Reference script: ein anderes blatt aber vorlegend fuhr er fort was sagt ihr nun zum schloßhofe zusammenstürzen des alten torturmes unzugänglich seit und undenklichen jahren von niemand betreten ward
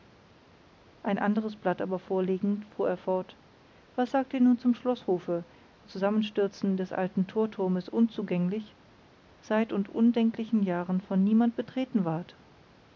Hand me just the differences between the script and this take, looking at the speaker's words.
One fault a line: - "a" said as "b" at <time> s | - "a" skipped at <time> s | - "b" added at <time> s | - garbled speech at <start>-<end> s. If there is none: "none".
none